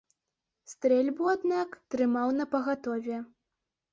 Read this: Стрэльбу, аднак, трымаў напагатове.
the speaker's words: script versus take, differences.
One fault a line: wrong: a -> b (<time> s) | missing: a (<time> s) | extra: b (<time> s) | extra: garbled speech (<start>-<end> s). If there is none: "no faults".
no faults